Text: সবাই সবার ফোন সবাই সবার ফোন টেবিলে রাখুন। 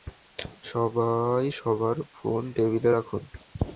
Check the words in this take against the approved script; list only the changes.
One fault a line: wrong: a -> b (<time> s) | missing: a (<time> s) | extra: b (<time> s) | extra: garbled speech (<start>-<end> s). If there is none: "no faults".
missing: সবাই সবার ফোন (2.4 s)